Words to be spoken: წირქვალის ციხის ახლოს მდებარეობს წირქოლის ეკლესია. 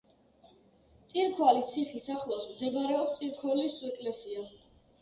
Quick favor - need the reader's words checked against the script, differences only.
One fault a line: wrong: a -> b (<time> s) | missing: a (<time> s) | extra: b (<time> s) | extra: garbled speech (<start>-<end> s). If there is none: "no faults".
no faults